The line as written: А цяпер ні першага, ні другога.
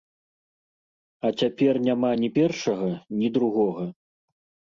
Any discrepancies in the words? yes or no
yes